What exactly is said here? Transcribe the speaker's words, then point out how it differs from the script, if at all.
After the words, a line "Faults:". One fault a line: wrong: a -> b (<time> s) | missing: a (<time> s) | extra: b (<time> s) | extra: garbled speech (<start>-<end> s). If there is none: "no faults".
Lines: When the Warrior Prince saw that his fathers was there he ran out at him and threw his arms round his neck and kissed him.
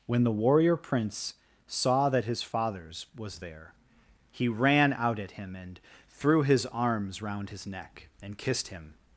When the Warrior Prince saw that his fathers was there he ran out at him and threw his arms round his neck and kissed him.
Faults:
no faults